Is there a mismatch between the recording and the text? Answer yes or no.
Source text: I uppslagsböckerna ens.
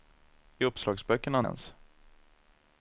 no